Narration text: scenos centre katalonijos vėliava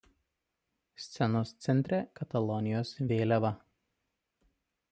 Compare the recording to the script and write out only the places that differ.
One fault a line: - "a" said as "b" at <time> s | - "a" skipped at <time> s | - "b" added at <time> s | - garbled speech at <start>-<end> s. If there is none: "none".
none